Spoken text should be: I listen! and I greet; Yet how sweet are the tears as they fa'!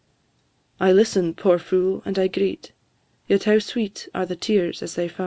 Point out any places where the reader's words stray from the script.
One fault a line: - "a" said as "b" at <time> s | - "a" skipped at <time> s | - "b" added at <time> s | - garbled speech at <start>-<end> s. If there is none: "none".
- "poor fool" added at 1.4 s